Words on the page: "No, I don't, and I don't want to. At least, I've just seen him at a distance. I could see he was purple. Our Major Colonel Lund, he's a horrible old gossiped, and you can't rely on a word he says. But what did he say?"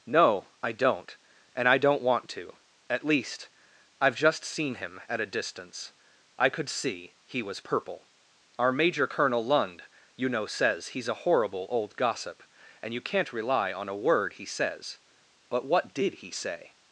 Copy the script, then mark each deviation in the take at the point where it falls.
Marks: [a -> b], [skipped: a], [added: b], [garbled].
"No, I don't, and I don't want to. At least, I've just seen him at a distance. I could see he was purple. Our Major Colonel Lund, [added: you know says] he's a horrible old [gossiped, -> gossip] and you can't rely on a word he says. But what did he say?"